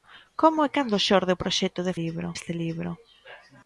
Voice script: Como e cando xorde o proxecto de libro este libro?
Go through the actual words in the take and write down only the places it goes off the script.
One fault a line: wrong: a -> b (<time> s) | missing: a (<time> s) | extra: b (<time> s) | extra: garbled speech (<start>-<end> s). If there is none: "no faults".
no faults